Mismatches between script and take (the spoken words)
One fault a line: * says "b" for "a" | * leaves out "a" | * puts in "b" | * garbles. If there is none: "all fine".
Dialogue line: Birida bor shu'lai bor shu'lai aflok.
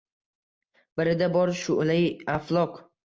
* leaves out "bor shu'lai"